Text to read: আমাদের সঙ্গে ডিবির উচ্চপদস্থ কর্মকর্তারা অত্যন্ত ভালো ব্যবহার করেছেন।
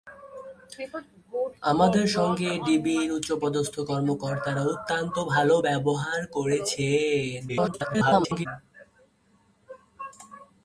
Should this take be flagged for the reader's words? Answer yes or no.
yes